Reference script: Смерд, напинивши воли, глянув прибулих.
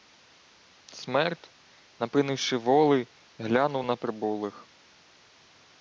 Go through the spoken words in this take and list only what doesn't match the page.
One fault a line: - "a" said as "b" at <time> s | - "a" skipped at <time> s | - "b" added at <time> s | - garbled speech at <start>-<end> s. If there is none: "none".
- "на" added at 3.8 s